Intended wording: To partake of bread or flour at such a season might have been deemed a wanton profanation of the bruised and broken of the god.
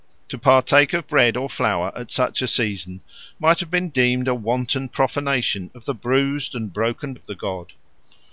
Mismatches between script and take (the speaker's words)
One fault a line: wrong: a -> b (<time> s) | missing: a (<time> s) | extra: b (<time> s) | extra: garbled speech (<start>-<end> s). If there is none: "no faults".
no faults